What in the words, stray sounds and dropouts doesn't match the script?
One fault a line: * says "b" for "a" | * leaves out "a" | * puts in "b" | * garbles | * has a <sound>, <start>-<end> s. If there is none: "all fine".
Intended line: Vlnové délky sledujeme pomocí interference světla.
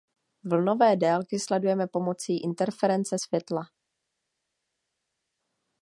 all fine